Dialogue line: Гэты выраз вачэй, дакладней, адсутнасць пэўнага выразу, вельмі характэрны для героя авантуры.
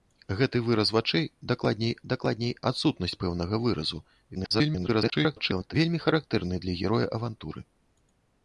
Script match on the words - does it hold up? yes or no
no